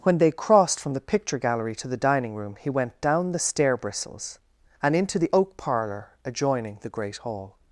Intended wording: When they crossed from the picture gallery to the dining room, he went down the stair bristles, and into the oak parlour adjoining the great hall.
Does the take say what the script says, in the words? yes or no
yes